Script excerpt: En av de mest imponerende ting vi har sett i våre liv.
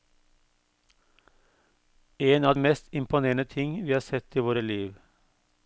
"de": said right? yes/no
no